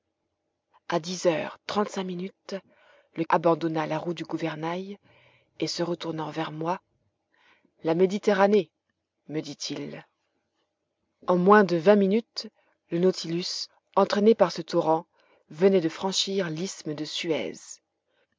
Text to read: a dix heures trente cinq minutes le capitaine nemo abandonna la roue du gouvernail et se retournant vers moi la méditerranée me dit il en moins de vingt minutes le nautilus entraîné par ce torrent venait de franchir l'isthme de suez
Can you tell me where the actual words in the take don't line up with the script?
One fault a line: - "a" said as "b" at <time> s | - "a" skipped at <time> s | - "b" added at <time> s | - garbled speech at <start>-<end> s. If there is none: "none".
- "capitaine nemo" skipped at 3.2 s